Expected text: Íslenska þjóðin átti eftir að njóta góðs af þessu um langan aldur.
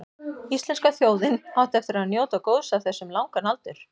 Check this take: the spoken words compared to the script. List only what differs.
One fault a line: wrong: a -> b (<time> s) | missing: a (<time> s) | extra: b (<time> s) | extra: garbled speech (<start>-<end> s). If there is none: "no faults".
no faults